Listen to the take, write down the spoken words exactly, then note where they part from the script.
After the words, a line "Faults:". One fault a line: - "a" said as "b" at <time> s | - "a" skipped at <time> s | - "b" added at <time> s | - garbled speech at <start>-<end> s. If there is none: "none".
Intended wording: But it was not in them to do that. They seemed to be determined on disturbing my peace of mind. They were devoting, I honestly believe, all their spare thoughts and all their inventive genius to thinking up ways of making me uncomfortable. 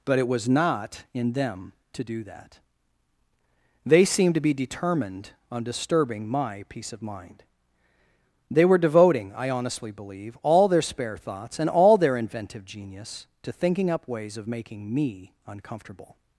But it was not in them to do that. They seemed to be determined on disturbing my peace of mind. They were devoting, I honestly believe, all their spare thoughts and all their inventive genius to thinking up ways of making me uncomfortable.
Faults:
none